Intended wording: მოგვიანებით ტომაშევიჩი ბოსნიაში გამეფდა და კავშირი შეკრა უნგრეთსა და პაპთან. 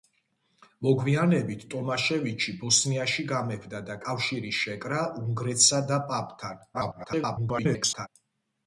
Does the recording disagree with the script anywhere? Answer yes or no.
yes